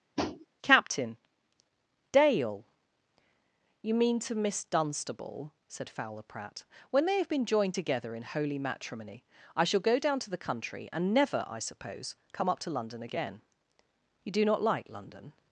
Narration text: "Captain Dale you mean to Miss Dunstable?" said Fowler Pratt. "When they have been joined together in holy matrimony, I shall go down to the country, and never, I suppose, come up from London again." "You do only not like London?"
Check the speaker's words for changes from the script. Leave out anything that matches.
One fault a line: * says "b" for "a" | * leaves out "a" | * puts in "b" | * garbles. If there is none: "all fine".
* says "to" for "from"
* leaves out "only"